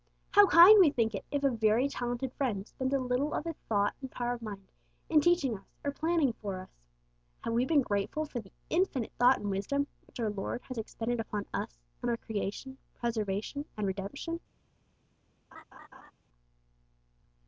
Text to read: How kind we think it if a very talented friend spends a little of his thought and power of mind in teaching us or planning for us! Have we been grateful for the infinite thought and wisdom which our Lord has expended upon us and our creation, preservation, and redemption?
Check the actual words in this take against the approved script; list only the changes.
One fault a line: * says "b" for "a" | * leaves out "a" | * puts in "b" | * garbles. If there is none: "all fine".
all fine